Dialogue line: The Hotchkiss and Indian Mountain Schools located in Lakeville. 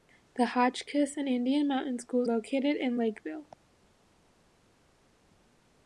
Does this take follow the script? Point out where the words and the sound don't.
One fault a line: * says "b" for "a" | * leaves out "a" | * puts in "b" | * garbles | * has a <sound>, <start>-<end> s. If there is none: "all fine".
all fine